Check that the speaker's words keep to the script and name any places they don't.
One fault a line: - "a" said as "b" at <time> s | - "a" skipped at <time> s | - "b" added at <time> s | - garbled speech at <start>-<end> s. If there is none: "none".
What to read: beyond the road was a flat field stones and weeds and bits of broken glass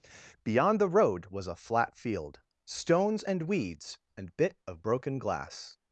- "bits" said as "bit" at 4.4 s